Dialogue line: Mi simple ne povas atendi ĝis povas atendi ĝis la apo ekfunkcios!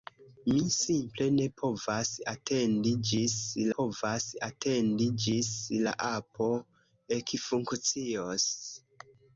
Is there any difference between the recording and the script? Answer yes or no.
no